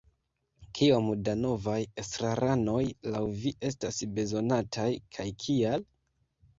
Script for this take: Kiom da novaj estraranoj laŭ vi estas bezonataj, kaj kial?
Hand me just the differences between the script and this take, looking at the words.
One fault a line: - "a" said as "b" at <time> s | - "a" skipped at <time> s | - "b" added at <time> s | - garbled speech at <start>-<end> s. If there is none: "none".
none